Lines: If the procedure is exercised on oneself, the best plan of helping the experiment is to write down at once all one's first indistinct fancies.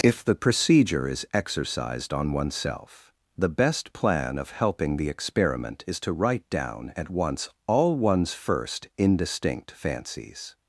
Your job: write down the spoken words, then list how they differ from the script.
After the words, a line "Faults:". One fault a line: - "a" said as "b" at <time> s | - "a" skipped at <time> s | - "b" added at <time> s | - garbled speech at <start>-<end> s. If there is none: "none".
If the procedure is exercised on oneself, the best plan of helping the experiment is to write down at once all one's first indistinct fancies.
Faults:
none